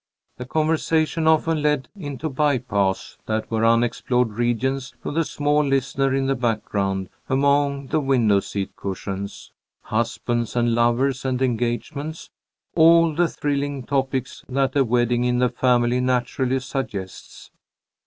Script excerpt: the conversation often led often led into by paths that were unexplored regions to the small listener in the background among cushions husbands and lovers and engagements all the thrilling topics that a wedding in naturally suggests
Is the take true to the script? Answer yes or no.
no